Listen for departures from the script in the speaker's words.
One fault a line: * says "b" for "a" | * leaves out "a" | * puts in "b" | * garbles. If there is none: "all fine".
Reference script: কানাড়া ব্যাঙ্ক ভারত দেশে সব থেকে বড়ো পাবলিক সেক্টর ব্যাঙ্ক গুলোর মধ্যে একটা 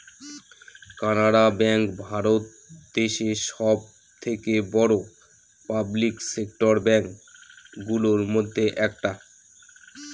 all fine